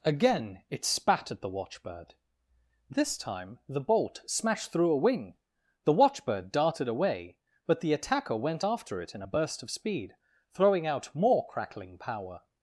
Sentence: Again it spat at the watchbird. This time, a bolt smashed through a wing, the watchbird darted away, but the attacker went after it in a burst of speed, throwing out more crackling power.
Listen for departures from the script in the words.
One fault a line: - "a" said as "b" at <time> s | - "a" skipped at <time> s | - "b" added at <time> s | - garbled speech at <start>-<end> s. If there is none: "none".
- "a" said as "the" at 3.7 s